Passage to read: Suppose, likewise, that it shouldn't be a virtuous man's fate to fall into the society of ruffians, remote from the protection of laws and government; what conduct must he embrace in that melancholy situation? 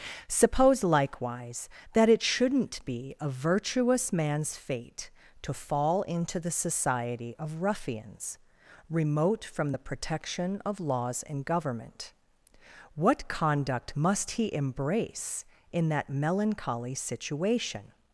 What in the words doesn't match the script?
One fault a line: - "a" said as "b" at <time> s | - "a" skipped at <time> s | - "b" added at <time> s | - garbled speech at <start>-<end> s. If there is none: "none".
none